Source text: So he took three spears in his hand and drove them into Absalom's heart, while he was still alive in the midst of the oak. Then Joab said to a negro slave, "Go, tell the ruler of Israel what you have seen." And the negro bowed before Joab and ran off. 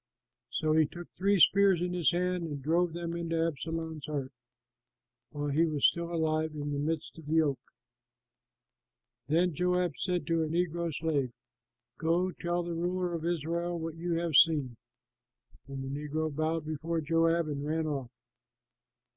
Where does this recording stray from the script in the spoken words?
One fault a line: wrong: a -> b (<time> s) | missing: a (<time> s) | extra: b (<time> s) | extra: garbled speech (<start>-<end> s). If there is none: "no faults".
no faults